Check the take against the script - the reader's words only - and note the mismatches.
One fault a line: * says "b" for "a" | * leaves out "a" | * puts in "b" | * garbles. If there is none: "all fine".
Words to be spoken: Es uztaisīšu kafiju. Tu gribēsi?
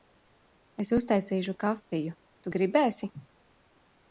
all fine